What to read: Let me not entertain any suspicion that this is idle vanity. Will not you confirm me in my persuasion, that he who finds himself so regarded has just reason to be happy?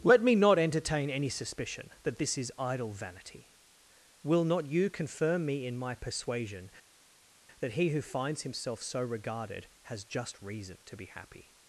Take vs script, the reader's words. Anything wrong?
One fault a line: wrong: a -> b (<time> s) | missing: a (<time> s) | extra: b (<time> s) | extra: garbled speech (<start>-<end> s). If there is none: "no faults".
no faults